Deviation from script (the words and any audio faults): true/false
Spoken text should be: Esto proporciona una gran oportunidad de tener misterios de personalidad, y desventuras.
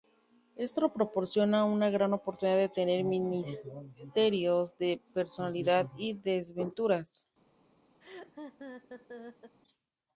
true